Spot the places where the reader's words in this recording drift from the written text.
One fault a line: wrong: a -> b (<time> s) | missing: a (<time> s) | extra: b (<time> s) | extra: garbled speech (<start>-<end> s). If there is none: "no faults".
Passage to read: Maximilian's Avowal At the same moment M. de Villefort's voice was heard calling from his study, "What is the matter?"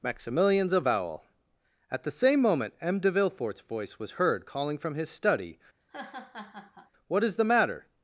no faults